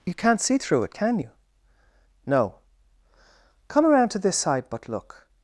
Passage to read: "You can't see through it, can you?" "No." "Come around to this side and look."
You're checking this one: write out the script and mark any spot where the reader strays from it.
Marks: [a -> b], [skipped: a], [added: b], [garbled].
"You can't see through it, can you?" "No." "Come around to this side [and -> but] look."